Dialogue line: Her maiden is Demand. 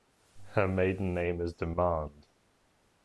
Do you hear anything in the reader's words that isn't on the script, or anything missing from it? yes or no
yes